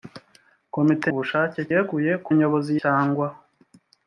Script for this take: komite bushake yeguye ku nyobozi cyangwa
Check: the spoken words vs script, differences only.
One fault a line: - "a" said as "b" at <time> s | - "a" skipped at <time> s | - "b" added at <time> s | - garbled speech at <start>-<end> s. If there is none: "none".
none